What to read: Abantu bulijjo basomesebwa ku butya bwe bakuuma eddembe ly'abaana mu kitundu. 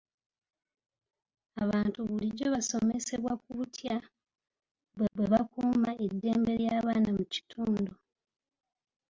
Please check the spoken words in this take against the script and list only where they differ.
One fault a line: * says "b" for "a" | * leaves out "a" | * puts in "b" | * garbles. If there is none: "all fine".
* puts in "bwe"